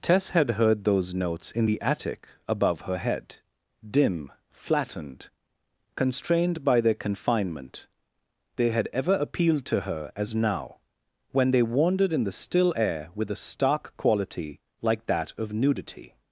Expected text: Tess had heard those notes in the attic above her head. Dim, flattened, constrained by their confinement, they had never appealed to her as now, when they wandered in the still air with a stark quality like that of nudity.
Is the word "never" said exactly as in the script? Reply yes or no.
no